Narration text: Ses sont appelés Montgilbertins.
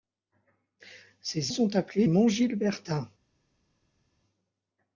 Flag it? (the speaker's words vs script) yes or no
no